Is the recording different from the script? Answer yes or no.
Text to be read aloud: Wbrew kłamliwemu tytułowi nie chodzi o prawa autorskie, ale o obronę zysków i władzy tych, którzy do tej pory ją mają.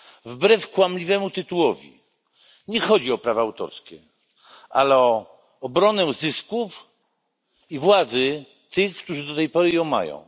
no